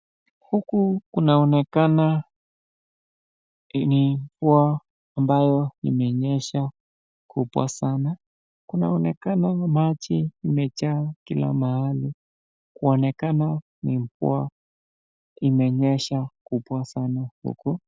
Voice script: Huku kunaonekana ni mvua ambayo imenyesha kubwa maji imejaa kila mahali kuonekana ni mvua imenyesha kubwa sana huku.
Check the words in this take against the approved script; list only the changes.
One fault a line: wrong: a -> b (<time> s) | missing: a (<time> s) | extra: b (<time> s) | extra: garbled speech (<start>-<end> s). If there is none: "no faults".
extra: sana Kunaonekana (7.7 s)